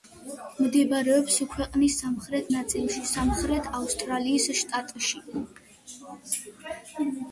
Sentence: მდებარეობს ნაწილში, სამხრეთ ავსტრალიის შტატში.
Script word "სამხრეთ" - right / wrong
right